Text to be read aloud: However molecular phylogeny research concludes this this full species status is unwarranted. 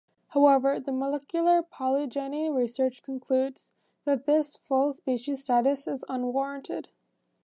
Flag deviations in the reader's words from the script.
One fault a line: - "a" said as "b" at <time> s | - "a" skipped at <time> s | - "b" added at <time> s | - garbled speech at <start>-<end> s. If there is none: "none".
- "the" added at 0.8 s
- "this" said as "that" at 4.0 s